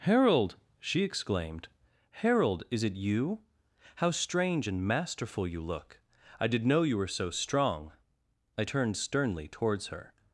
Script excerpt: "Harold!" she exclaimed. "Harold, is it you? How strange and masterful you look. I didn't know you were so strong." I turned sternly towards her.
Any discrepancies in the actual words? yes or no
yes